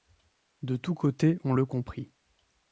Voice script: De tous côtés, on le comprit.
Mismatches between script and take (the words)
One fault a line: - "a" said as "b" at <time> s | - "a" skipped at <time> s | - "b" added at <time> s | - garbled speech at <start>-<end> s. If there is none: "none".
none